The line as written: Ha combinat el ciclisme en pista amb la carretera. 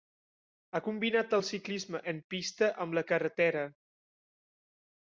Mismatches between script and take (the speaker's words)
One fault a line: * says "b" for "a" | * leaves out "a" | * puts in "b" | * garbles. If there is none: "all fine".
all fine